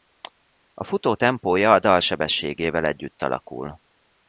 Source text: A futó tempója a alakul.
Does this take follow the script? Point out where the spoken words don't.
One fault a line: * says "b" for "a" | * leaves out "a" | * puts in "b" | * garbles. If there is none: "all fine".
* puts in "dal sebességével együtt"